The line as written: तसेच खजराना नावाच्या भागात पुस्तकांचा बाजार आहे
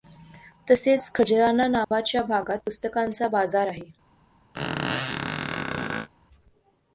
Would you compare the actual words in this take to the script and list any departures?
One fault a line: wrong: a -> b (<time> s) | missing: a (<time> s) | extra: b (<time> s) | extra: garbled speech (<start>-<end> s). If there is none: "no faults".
no faults